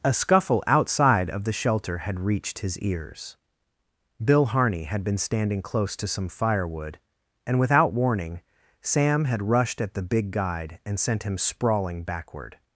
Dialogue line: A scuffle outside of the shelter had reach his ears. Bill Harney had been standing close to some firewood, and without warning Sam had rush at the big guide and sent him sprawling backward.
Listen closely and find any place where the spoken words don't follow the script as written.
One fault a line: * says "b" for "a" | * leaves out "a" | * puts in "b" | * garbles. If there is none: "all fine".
* says "reached" for "reach"
* says "rushed" for "rush"